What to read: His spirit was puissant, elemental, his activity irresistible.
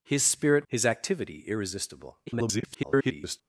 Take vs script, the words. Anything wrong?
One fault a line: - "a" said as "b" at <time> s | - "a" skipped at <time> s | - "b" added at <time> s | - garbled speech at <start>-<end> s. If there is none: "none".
- "was puissant elemental" skipped at 0.7 s
- garbled speech at 2.3-3.4 s